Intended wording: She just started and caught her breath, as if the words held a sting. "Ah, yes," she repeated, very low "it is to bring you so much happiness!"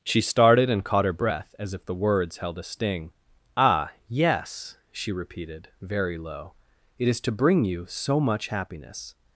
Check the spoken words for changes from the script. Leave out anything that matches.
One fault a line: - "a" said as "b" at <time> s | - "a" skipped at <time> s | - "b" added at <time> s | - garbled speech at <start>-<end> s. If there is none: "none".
- "just" skipped at 0.2 s